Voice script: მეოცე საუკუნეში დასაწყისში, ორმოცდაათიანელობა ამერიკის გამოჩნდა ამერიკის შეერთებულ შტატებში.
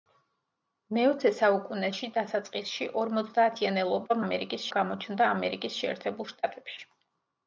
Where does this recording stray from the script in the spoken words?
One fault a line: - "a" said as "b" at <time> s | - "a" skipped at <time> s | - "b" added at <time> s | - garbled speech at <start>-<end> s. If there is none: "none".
none